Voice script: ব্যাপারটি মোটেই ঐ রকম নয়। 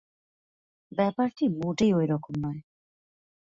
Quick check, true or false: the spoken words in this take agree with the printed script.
true